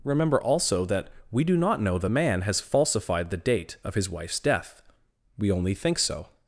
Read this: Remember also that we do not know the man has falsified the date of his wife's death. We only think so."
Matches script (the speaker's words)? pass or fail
pass